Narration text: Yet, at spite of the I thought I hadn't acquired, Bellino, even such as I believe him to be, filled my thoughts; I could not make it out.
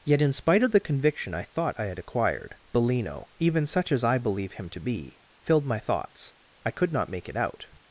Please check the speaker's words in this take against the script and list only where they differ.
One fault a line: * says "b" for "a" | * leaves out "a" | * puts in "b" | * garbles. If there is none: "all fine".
* says "in" for "at"
* puts in "conviction"
* says "had" for "hadn't"